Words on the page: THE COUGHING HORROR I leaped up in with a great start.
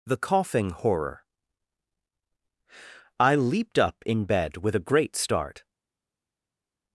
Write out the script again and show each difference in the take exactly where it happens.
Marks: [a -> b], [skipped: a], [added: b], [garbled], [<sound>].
THE COUGHING HORROR I leaped up in [added: bed] with a great start.